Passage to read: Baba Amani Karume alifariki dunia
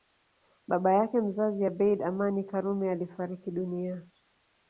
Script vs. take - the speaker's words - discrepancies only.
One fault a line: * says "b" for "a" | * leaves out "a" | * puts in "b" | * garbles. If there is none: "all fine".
* puts in "yake mzazi Abeid"